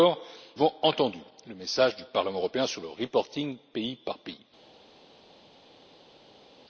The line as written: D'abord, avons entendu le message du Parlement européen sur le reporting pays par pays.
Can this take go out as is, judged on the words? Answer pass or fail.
pass